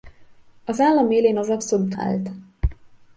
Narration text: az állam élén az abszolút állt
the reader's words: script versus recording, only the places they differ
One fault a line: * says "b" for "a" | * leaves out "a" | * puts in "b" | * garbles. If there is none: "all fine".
all fine